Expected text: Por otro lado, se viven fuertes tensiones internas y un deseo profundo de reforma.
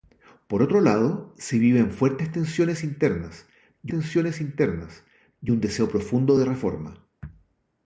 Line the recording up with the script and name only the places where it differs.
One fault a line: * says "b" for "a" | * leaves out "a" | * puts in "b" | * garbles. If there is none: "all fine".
* puts in "tensiones internas y"